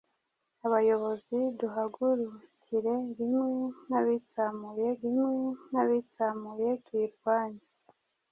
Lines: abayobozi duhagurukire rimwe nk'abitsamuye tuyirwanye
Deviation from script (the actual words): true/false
true